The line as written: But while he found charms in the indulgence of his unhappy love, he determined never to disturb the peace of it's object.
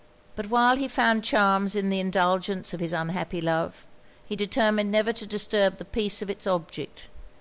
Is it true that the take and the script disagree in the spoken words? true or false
false